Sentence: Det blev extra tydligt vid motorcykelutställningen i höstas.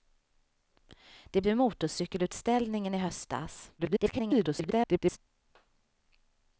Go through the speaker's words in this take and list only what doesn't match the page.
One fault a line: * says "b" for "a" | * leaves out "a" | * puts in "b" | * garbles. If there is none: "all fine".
* leaves out "blev extra tydligt"
* garbles